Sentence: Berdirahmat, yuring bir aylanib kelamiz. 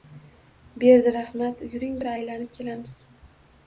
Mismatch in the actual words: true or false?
false